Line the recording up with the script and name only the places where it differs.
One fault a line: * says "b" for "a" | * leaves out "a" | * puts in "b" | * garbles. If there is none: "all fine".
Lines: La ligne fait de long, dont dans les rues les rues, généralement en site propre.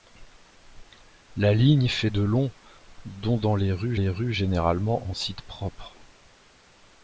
all fine